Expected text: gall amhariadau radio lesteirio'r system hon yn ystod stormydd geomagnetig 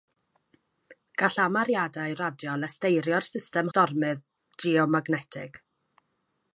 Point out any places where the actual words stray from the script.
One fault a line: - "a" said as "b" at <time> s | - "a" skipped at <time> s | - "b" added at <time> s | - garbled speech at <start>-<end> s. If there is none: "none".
- "hon yn ystod" skipped at 3.7 s